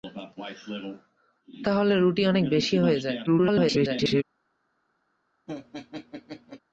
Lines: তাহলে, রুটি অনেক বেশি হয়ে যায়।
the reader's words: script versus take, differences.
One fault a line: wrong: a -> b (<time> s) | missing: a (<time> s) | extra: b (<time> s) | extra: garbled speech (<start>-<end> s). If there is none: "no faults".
extra: garbled speech (3.3-4.2 s)